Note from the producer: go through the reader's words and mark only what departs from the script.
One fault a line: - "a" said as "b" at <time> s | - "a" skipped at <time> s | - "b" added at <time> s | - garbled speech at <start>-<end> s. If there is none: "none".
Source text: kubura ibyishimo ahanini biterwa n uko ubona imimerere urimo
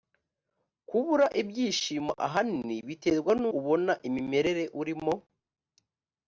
- "uko" skipped at 3.4 s